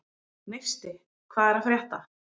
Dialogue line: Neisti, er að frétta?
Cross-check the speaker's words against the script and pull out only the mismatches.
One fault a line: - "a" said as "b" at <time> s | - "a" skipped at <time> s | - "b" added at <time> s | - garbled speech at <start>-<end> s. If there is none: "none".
- "hvað" added at 1.4 s